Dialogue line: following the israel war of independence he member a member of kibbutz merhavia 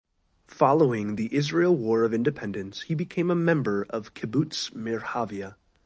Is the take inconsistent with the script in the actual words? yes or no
yes